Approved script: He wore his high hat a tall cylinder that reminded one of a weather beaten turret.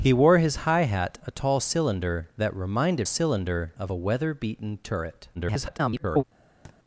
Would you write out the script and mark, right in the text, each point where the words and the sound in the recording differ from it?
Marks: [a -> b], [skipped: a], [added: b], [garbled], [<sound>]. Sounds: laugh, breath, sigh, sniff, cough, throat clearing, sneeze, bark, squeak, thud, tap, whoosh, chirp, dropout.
He wore his high hat a tall cylinder that reminded [one -> cylinder] of a weather beaten turret. [garbled] [thud]